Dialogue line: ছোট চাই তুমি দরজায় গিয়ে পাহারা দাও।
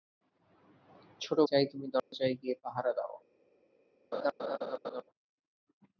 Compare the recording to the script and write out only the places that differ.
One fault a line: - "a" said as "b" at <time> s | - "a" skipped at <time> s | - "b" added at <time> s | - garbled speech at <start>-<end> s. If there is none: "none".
none